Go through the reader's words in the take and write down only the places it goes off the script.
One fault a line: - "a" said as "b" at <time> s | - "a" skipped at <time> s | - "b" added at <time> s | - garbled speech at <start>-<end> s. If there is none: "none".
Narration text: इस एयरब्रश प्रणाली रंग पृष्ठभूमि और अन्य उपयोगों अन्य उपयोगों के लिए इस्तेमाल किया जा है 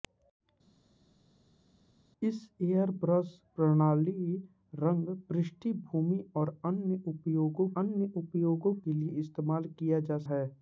none